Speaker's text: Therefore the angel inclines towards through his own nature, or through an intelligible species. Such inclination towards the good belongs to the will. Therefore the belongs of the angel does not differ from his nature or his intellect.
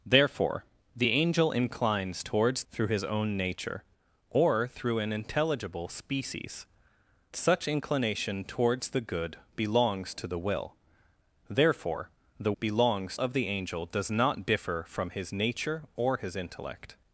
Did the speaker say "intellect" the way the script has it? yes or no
yes